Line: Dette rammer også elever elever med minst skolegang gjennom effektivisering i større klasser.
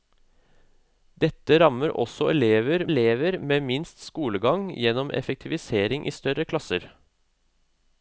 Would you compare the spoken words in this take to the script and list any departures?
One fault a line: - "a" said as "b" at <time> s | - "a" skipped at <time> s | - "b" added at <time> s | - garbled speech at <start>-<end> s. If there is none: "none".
none